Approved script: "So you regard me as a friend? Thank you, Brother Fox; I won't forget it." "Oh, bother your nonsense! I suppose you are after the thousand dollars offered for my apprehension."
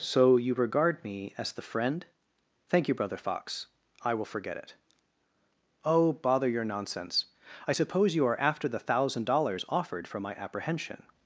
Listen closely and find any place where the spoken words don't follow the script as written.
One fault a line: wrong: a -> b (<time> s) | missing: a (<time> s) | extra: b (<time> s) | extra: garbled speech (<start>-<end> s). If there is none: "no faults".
wrong: a -> the (1.5 s)
wrong: won't -> will (4.2 s)